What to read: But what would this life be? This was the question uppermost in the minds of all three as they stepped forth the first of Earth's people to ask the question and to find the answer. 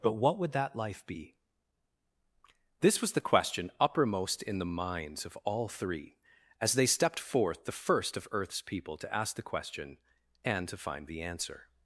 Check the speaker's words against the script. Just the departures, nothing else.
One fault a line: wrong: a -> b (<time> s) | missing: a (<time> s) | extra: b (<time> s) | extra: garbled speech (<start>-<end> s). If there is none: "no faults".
wrong: this -> that (0.5 s)